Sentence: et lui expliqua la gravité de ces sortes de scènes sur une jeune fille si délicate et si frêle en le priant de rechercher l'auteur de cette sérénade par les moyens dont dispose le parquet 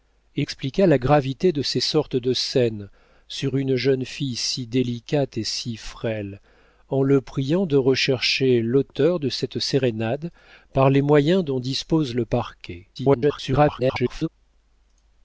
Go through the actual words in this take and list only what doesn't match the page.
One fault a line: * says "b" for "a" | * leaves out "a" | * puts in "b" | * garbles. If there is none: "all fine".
* leaves out "lui"
* garbles